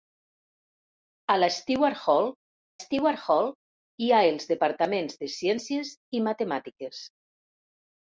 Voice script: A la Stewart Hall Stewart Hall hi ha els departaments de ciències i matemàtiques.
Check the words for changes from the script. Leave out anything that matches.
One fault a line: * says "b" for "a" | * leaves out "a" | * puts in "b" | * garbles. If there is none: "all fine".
all fine